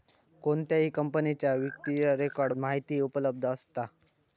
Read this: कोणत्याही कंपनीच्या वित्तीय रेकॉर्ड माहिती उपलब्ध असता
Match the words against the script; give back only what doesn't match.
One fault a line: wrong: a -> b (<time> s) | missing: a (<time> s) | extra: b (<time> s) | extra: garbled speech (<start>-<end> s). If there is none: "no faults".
no faults